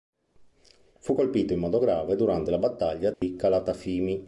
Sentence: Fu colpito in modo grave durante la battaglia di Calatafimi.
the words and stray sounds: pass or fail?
fail